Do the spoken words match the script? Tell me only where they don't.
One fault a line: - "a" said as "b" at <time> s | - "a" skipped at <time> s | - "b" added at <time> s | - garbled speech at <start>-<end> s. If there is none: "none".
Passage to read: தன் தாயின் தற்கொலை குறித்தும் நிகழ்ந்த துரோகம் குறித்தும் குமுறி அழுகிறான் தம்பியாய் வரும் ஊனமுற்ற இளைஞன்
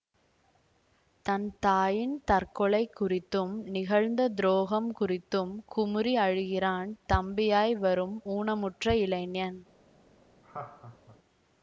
none